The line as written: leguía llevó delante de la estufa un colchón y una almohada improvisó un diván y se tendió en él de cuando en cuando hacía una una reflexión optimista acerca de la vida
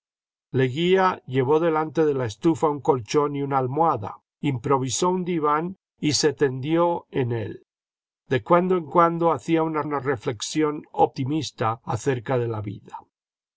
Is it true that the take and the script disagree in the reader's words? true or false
false